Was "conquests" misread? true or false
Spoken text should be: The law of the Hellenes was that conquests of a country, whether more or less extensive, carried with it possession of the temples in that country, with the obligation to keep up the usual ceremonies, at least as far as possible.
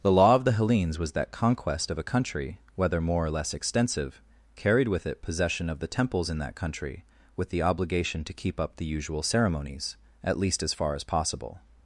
true